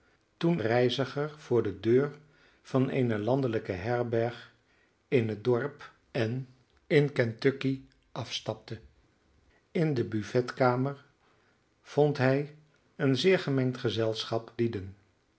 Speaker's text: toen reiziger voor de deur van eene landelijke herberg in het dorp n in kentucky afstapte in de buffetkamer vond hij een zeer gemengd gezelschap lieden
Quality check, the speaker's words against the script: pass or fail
pass